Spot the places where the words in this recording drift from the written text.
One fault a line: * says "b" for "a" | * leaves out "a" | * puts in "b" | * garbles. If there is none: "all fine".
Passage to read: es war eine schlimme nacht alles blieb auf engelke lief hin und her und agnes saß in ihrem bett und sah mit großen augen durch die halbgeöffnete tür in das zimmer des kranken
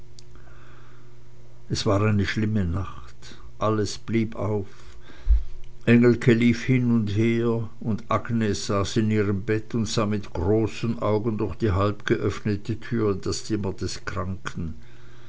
all fine